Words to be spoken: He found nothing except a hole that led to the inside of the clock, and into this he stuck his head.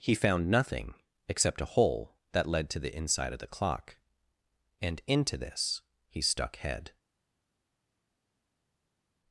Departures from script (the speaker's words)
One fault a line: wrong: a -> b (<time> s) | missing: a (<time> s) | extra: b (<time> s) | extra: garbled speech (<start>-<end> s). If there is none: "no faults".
missing: his (6.5 s)